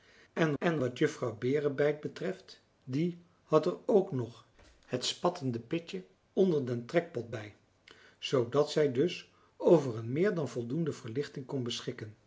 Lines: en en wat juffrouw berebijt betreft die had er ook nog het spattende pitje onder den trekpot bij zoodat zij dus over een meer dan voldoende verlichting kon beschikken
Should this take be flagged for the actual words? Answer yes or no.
no